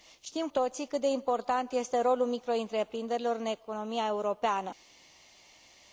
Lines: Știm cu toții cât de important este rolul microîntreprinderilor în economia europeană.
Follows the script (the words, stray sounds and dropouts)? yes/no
no